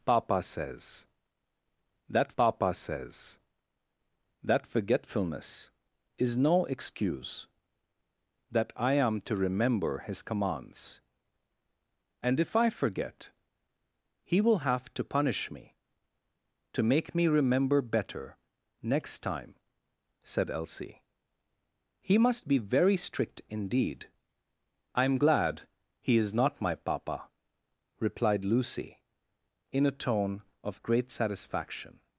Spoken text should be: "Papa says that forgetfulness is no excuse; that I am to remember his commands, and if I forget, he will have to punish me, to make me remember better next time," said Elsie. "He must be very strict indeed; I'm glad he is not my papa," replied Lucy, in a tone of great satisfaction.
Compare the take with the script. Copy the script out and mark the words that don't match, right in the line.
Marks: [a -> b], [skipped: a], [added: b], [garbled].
"Papa says that [added: papa says that] forgetfulness is no excuse; that I am to remember his commands, and if I forget, he will have to punish me, to make me remember better next time," said Elsie. "He must be very strict indeed; I'm glad he is not my papa," replied Lucy, in a tone of great satisfaction.